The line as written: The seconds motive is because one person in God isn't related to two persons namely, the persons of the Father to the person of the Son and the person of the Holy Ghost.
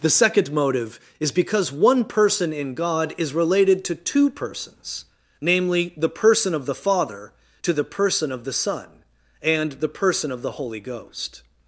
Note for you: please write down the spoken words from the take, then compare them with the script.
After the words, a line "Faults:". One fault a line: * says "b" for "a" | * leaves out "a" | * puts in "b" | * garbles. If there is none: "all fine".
The second motive is because one person in God is related to two persons namely, the person of the Father to the person of the Son and the person of the Holy Ghost.
Faults:
* says "second" for "seconds"
* says "is" for "isn't"
* says "person" for "persons"